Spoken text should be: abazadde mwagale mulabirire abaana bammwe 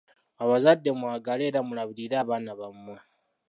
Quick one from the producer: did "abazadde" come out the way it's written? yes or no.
yes